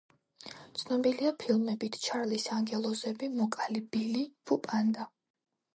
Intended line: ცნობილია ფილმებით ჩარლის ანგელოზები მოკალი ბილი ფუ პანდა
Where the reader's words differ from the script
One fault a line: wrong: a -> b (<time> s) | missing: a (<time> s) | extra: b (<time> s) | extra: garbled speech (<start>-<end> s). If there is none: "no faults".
no faults